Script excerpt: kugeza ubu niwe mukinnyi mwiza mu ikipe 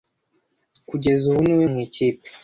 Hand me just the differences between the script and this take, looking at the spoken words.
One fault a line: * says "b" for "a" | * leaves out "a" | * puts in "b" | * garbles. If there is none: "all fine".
* leaves out "mukinnyi mwiza"